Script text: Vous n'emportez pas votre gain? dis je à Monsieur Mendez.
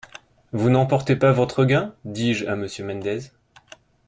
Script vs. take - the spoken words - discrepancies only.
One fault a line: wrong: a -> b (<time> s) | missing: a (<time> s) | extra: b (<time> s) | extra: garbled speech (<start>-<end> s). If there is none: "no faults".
no faults